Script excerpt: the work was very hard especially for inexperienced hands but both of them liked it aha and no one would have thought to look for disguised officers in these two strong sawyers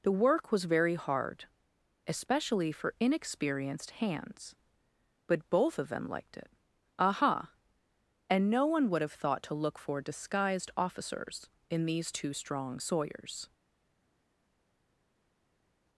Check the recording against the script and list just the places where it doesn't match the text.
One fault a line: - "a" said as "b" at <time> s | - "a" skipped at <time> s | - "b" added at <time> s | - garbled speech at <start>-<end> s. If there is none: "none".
none